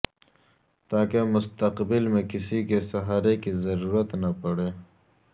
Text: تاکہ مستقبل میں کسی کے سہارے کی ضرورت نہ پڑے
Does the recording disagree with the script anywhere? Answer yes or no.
no